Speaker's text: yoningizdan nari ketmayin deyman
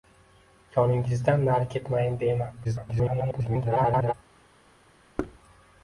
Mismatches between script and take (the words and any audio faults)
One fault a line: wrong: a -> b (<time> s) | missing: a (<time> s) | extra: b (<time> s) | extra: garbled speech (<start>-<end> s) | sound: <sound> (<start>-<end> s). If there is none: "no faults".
extra: garbled speech (2.6-4.1 s)
sound: thud (5.2-5.4 s)